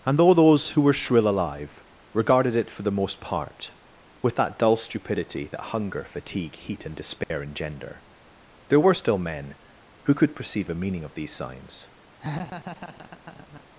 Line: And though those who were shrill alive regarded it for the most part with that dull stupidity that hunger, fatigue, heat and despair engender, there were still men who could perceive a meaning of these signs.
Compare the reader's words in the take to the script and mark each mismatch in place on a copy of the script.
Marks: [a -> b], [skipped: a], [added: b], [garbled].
And though those who were shrill alive regarded it for the most part with that dull stupidity that hunger, fatigue, heat and despair engender, there were still men who could perceive a meaning of these signs.